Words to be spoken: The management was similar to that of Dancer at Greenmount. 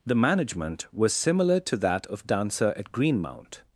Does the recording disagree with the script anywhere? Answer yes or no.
no